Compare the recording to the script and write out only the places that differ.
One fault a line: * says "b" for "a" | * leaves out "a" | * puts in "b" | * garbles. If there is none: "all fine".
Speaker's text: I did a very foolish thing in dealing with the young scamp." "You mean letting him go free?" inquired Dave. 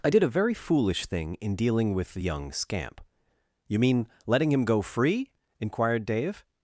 all fine